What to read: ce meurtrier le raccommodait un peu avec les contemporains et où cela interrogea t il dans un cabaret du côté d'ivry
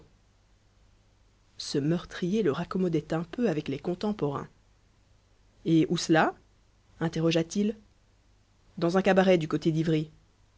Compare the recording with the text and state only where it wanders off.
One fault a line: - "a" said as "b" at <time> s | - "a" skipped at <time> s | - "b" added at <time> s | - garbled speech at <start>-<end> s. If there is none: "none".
none